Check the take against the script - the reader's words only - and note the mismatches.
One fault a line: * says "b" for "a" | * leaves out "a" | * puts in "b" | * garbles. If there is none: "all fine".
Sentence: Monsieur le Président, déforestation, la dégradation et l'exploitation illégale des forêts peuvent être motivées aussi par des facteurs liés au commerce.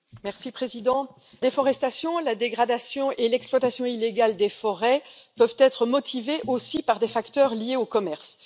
all fine